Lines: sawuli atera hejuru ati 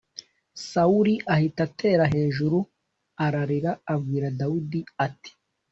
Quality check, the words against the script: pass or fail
fail